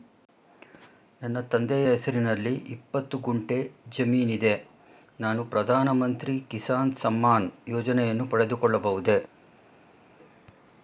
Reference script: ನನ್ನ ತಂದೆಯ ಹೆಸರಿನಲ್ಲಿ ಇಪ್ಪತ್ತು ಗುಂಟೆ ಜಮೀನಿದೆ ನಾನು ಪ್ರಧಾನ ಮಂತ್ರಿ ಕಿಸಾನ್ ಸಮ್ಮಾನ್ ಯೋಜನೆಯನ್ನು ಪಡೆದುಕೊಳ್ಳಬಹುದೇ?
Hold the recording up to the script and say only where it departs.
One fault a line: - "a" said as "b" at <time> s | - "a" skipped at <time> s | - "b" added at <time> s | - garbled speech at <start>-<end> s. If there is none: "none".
none